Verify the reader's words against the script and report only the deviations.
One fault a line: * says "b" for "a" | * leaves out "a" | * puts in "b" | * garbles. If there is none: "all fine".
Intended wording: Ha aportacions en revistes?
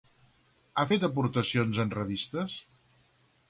* puts in "fet"